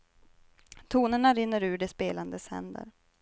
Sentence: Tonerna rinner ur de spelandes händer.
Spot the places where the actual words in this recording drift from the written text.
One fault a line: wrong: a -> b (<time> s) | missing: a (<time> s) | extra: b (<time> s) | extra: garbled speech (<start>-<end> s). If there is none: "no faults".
no faults